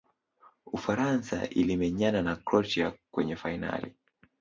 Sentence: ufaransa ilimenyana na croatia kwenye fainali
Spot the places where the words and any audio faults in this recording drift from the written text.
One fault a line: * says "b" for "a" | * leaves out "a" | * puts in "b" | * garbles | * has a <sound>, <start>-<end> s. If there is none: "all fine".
all fine